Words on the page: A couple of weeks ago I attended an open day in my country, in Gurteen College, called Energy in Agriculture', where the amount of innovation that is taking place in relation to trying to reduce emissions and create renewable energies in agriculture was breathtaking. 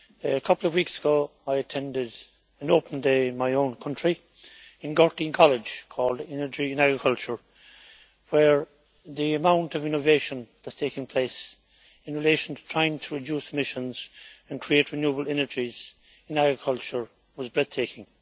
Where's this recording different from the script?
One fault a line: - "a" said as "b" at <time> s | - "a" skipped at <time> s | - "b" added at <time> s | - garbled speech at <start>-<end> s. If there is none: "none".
- "own" added at 3.5 s